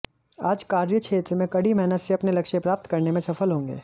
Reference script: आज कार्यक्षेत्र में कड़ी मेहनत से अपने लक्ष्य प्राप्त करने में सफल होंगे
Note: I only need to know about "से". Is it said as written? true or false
true